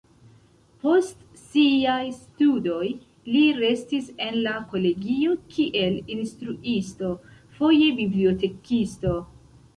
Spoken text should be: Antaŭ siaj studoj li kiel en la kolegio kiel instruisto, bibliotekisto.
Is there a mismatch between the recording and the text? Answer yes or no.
yes